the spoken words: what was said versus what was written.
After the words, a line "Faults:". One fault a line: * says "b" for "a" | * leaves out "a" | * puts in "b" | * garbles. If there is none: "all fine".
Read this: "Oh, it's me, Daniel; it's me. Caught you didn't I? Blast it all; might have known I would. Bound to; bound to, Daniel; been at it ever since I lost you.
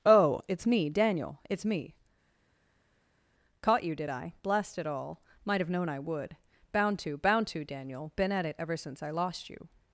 "Oh, it's me, Daniel; it's me. Caught you did I? Blast it all; might have known I would. Bound to; bound to, Daniel; been at it ever since I lost you.
Faults:
* says "did" for "didn't"